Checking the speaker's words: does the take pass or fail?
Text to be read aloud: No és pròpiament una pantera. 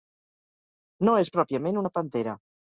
pass